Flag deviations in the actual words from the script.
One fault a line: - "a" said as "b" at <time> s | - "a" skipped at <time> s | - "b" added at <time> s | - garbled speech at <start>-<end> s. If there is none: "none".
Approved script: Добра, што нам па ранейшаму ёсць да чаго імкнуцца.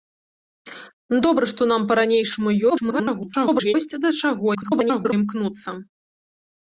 - garbled speech at 2.7-3.7 s
- garbled speech at 4.5-5.1 s